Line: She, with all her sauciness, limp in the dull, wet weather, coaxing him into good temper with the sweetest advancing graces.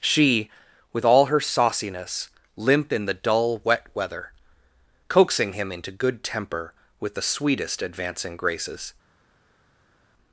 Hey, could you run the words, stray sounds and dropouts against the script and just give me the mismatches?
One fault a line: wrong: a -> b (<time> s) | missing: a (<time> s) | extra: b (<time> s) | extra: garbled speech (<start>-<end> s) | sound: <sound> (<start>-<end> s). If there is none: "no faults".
no faults